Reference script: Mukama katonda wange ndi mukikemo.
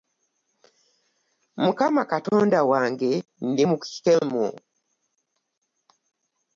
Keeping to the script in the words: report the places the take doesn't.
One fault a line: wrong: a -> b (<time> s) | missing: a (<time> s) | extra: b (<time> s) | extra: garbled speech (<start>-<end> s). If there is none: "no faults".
no faults